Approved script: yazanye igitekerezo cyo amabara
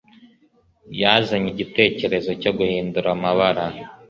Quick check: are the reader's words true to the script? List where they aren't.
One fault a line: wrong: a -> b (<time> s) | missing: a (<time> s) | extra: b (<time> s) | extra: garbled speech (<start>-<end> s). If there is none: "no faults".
extra: guhindura (2.6 s)